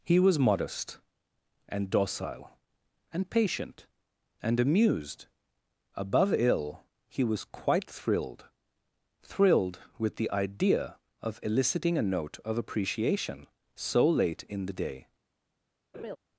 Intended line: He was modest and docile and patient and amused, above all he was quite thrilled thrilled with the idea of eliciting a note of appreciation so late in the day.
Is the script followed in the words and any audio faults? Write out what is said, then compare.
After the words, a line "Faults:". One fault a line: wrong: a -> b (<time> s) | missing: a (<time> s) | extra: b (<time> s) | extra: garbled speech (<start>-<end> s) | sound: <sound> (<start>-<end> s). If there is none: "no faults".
He was modest and docile and patient and amused, above ill he was quite thrilled thrilled with the idea of eliciting a note of appreciation so late in the day.
Faults:
wrong: all -> ill (6.3 s)
sound: laugh (15.9-16.2 s)